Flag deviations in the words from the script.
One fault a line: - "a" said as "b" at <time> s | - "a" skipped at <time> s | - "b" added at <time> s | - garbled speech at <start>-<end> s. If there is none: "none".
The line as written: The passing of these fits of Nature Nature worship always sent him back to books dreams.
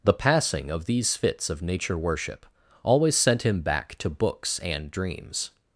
- "Nature" skipped at 2.0 s
- "and" added at 4.6 s